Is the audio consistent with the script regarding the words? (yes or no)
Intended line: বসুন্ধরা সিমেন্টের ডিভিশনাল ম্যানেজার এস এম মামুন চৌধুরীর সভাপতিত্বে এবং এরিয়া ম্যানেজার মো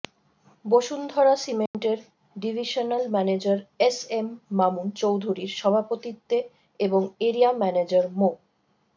yes